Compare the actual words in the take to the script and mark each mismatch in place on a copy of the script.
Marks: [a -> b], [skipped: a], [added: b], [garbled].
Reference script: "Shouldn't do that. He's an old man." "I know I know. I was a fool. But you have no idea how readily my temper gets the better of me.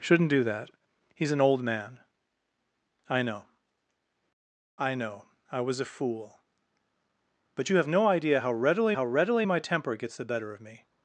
"Shouldn't do that. He's an old man." "I know I know. I was a fool. But you have no idea how readily [added: how readily] my temper gets the better of me.